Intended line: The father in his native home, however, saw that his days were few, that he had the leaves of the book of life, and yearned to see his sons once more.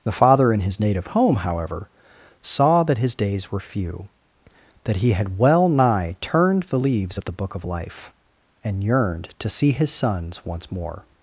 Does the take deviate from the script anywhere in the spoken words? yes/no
yes